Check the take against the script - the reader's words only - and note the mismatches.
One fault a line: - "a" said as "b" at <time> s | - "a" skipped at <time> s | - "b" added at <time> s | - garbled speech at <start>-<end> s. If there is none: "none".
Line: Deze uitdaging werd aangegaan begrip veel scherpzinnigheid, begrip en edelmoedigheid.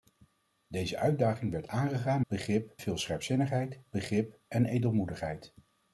none